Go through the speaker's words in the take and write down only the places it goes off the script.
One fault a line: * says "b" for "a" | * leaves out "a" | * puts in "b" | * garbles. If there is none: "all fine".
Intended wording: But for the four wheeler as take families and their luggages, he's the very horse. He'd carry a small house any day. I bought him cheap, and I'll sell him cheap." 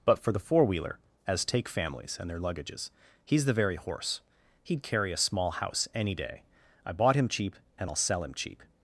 all fine